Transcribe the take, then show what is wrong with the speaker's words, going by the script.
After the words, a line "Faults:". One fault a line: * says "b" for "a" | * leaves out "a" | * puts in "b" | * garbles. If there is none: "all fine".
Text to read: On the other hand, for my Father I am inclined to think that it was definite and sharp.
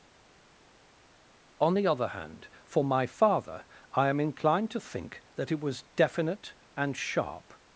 On the other hand, for my Father I am inclined to think that it was definite and sharp.
Faults:
all fine